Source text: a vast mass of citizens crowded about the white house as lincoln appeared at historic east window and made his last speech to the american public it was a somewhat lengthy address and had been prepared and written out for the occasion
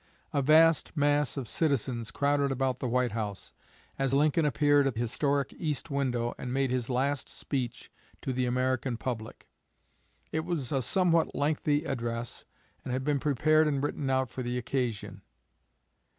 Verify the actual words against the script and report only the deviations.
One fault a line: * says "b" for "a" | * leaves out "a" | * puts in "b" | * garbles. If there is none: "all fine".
all fine